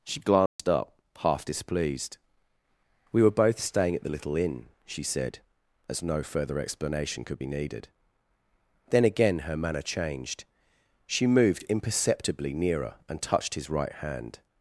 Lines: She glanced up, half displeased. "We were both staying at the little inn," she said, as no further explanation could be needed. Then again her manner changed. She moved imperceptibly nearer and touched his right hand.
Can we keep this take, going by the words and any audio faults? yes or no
no